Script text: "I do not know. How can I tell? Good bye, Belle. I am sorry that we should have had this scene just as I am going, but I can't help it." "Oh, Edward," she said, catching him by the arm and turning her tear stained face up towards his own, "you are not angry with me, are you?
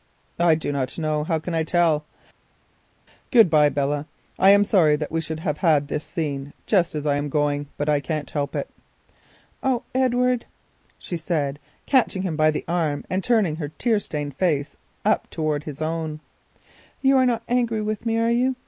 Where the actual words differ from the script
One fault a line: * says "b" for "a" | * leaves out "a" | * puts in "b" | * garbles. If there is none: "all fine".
all fine